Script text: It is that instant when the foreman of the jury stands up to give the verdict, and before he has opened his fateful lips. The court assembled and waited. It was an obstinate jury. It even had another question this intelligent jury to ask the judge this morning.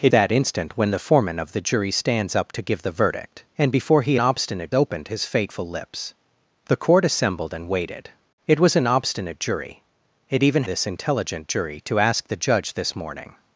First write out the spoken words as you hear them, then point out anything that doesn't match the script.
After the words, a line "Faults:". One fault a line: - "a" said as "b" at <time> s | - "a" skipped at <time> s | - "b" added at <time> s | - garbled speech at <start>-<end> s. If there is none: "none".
It that instant when the foreman of the jury stands up to give the verdict, and before he obstinate opened his fateful lips. The court assembled and waited. It was an obstinate jury. It even this intelligent jury to ask the judge this morning.
Faults:
- "is" skipped at 0.1 s
- "has" said as "obstinate" at 4.2 s
- "had another question" skipped at 10.6 s